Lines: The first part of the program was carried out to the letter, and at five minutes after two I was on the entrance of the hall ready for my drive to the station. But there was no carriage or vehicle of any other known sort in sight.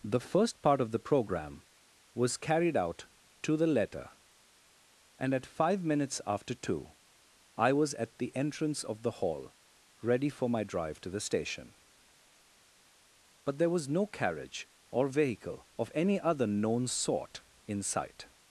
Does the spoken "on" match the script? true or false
false